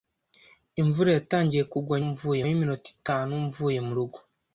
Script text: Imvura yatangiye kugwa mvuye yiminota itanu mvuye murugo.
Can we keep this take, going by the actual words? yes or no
yes